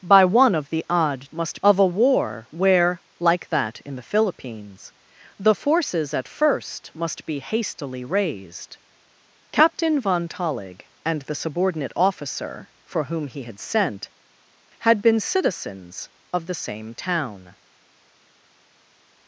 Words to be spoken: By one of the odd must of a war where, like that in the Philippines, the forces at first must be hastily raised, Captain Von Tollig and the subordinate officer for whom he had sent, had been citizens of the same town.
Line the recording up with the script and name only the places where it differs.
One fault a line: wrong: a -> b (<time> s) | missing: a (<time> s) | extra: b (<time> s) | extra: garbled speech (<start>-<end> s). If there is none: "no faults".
no faults